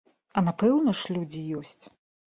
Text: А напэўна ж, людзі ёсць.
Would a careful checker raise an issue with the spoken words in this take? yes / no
no